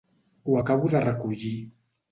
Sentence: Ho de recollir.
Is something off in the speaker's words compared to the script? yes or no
yes